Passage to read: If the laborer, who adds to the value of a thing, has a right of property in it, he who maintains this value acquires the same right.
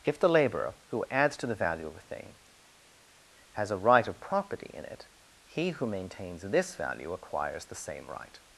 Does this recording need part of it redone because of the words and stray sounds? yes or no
no